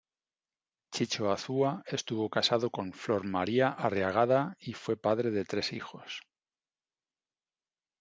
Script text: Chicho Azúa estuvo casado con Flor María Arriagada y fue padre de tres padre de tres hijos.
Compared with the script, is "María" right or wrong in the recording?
right